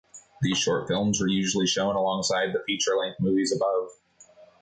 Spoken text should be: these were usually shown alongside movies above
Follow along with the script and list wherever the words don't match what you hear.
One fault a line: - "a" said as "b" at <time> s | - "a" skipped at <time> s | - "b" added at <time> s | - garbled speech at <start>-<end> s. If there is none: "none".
- "short films" added at 0.6 s
- "the feature length" added at 2.5 s